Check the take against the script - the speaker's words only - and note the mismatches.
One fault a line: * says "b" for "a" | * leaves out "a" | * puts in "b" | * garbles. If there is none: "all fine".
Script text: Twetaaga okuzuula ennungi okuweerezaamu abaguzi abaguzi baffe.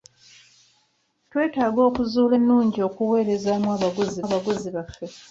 all fine